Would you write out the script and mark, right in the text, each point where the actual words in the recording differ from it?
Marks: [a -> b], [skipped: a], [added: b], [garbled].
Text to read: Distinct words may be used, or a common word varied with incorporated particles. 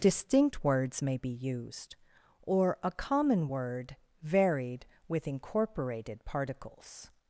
Distinct words may be used, or a common word varied with incorporated particles.